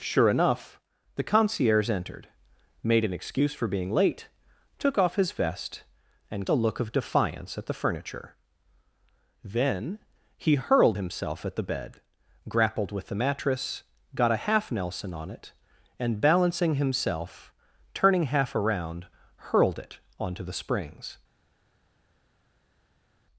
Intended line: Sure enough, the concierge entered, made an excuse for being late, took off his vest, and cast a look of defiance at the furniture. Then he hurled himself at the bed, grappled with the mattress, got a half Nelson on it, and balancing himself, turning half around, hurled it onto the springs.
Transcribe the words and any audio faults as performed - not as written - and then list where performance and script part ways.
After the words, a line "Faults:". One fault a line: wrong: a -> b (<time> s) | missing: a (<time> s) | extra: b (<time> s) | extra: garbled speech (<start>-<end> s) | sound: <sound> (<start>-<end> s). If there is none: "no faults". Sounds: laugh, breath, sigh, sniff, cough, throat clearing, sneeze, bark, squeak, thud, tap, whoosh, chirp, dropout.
Sure enough, the concierge entered, made an excuse for being late, took off his vest, and a look of defiance at the furniture. Then he hurled himself at the bed, grappled with the mattress, got a half Nelson on it, and balancing himself, turning half around, hurled it onto the springs.
Faults:
missing: cast (6.5 s)